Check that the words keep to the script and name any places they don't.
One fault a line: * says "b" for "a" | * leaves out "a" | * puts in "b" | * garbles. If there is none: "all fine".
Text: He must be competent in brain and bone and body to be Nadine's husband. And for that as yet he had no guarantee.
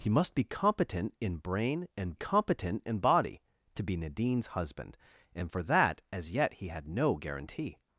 * says "competent" for "bone"